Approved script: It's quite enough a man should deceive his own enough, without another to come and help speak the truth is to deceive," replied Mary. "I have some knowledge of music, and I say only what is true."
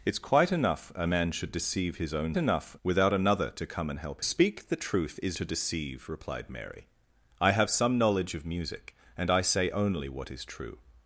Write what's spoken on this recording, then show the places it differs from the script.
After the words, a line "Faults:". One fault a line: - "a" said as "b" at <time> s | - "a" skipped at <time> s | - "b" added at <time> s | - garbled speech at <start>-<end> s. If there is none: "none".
It's quite enough a man should deceive his own enough, without another to come and help speak the truth is to deceive," replied Mary. "I have some knowledge of music, and I say only what is true."
Faults:
none